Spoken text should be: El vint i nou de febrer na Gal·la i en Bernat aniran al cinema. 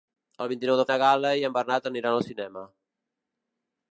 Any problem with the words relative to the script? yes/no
yes